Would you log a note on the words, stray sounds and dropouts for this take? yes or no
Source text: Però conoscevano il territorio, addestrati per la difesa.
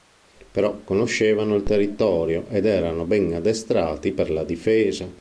yes